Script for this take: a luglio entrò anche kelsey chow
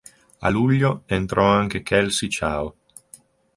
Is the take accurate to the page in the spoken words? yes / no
yes